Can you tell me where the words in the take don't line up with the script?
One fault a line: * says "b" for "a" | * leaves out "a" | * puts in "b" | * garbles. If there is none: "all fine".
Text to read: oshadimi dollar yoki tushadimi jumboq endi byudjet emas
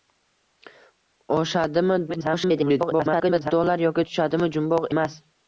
* garbles
* leaves out "endi byudjet"